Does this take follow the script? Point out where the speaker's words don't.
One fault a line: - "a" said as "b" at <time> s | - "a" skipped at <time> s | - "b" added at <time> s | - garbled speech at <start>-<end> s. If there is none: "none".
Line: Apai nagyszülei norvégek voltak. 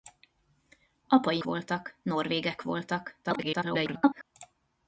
- "nagyszülei" said as "voltak" at 1.4 s
- garbled speech at 3.2-4.2 s